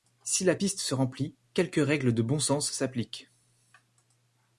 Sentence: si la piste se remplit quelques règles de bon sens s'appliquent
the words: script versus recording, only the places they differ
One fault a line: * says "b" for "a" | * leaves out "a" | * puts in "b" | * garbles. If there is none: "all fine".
all fine